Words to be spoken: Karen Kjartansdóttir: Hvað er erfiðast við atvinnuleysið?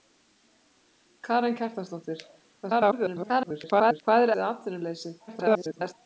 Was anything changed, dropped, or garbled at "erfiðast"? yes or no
yes